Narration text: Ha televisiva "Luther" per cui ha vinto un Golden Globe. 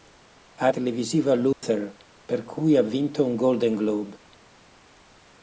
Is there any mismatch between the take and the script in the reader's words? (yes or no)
no